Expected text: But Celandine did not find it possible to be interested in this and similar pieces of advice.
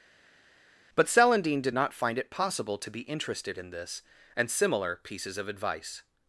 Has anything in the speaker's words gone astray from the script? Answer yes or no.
no